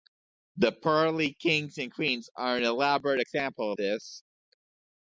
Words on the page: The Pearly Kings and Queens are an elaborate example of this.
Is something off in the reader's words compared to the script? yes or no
yes